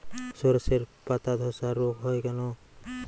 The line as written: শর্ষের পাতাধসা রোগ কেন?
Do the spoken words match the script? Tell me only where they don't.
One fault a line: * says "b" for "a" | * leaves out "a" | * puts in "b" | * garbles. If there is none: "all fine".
* puts in "হয়"